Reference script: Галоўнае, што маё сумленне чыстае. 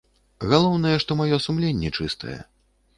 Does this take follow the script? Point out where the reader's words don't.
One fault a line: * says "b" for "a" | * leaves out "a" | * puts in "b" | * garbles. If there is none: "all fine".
all fine